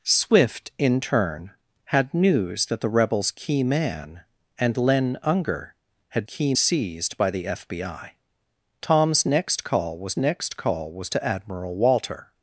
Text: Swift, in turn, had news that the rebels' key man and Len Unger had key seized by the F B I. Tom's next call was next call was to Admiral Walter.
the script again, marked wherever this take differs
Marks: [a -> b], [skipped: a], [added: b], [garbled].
Swift, in turn, had news that the rebels' key man and Len Unger had key seized by the F B I. Tom's next call was next call was to Admiral Walter.